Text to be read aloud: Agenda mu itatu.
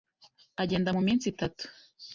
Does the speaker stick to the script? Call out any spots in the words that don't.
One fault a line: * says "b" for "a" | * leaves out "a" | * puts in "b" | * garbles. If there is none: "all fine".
* puts in "minsi"